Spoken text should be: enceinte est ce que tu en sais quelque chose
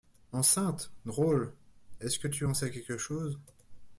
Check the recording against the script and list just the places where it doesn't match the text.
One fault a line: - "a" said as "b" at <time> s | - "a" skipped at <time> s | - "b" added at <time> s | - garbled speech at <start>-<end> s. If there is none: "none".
- "drôle" added at 1.1 s